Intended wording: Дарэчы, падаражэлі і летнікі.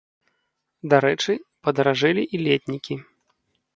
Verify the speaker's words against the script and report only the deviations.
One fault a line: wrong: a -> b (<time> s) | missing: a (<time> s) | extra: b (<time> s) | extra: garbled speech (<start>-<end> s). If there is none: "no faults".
no faults